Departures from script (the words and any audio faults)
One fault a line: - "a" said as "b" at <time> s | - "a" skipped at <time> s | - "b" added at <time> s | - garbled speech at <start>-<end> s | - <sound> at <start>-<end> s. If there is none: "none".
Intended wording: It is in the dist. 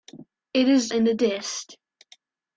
none